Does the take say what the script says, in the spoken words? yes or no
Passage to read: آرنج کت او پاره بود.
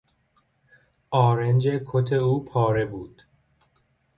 yes